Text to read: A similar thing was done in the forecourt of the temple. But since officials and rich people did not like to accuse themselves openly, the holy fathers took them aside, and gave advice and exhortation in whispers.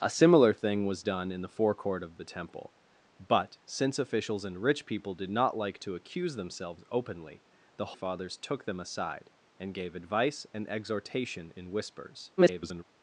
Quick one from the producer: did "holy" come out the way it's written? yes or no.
no